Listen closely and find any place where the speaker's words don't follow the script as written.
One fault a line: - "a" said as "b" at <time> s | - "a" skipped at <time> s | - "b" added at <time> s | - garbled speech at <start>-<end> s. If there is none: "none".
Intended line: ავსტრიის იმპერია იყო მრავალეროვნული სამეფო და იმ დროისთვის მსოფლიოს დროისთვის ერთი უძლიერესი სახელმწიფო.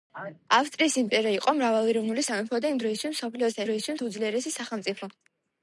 none